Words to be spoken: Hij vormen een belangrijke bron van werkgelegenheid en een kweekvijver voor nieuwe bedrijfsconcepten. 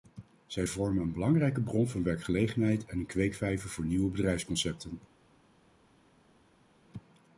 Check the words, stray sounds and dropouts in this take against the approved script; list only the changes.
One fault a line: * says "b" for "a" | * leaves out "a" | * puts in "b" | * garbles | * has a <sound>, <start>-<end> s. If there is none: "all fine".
* says "Zij" for "Hij"